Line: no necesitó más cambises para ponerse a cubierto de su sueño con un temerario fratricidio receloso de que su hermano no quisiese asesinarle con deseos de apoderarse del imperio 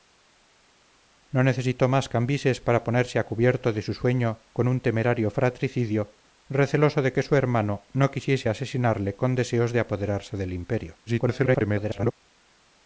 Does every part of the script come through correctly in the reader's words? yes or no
no